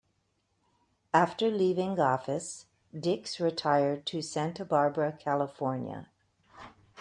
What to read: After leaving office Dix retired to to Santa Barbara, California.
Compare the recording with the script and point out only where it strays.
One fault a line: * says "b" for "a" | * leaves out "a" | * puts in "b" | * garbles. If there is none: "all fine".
* leaves out "to"